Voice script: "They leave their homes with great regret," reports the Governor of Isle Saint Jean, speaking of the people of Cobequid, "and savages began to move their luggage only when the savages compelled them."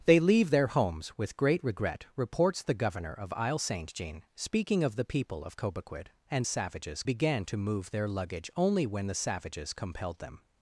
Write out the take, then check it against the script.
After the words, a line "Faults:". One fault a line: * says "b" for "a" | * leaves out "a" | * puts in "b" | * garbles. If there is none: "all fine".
"They leave their homes with great regret," reports the Governor of Isle Saint Jean, speaking of the people of Cobequid, "and savages began to move their luggage only when the savages compelled them."
Faults:
all fine